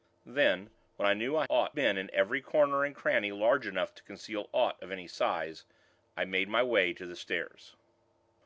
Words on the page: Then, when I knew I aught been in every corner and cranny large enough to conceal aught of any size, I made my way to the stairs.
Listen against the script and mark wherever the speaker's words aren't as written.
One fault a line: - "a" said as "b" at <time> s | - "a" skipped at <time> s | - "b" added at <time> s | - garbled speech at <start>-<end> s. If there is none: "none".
none